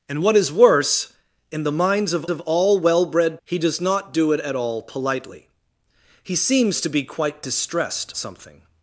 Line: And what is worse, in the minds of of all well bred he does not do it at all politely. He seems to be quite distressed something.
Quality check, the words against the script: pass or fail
pass